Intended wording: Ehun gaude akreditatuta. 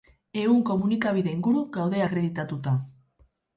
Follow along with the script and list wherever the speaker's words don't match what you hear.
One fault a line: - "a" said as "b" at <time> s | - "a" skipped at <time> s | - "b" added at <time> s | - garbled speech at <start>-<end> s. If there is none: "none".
- "komunikabide inguru" added at 0.7 s